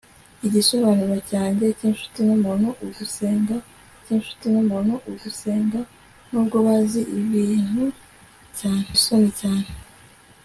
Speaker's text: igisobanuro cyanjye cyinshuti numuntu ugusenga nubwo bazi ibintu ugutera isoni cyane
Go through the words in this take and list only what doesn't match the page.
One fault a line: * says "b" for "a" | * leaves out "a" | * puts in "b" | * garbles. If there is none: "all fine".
* puts in "cyinshuti numuntu ugusenga"
* says "cyane" for "ugutera"